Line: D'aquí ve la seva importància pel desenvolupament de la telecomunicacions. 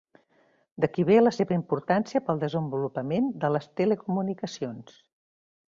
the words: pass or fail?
fail